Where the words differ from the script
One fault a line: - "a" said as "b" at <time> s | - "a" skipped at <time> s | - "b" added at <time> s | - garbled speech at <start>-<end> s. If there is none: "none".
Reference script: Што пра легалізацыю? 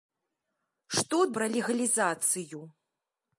none